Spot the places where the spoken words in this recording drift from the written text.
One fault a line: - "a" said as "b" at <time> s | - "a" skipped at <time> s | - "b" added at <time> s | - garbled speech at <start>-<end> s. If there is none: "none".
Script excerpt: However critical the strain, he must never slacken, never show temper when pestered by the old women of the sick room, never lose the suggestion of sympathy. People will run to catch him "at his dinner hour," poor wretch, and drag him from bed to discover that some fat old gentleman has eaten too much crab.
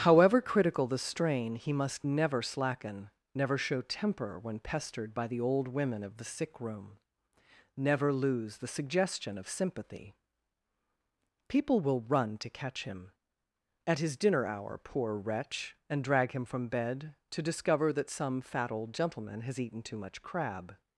none